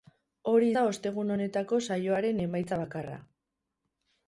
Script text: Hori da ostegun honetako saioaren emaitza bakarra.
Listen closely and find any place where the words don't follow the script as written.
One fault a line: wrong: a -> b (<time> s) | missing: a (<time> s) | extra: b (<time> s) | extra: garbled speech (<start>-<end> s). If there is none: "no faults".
no faults